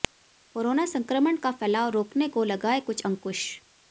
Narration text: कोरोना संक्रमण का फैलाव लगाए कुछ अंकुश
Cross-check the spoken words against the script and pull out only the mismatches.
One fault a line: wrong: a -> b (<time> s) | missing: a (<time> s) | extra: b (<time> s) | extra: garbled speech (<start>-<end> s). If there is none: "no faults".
extra: रोकने को (1.9 s)